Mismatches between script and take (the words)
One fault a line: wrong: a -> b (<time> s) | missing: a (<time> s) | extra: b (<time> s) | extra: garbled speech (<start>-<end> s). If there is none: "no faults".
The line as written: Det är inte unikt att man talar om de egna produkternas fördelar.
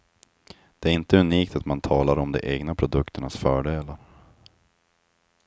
no faults